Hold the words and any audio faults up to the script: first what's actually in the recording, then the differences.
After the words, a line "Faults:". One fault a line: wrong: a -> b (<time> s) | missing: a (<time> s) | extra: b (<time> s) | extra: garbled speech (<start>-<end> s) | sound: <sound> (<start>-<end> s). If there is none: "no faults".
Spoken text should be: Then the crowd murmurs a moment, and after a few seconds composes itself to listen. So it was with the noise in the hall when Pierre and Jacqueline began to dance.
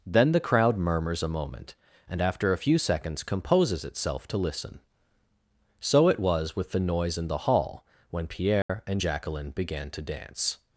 Then the crowd murmurs a moment, and after a few seconds composes itself to listen. So it was with the noise in the hall when Pierre and Jacqueline began to dance.
Faults:
sound: dropout (8.6-8.7 s)